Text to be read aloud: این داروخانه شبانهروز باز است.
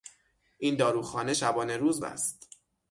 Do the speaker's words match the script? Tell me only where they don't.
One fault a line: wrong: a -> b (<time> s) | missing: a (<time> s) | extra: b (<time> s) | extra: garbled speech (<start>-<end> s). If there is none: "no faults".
missing: باز (2.0 s)